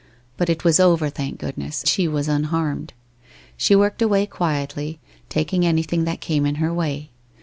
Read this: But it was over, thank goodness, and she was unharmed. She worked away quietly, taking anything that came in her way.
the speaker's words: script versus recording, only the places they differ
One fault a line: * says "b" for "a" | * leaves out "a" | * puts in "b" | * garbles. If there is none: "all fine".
* leaves out "and"